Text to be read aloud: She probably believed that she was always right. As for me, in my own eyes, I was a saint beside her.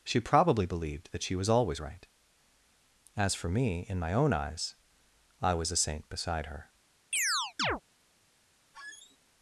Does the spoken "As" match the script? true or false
true